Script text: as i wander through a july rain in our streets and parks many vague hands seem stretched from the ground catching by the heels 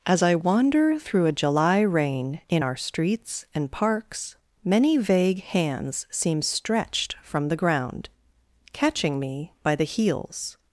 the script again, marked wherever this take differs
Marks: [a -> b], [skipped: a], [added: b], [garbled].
as i wander through a july rain in our streets and parks many vague hands seem stretched from the ground catching [added: me] by the heels